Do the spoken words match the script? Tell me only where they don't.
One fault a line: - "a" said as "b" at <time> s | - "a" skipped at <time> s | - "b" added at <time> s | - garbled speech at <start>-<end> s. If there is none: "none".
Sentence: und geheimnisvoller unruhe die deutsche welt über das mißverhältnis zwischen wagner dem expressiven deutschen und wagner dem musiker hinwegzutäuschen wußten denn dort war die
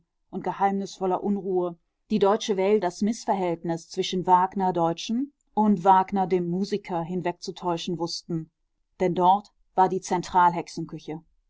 - "über" skipped at 2.9 s
- "dem expressiven" skipped at 4.7 s